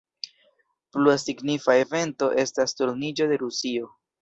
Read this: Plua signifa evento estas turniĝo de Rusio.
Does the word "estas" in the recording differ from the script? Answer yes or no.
no